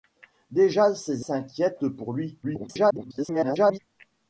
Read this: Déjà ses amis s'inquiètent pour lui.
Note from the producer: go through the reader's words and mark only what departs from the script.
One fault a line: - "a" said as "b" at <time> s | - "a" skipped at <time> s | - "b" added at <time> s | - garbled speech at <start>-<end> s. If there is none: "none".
- "amis" skipped at 1.2 s
- garbled speech at 2.4-3.8 s